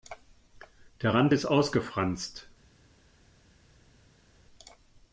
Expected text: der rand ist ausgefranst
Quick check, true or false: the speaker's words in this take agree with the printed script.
true